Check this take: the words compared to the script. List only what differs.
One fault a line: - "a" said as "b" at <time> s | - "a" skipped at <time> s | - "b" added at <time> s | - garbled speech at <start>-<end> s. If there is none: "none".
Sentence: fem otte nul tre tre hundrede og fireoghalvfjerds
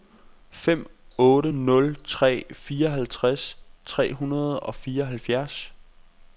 - "fireoghalvtreds" added at 2.5 s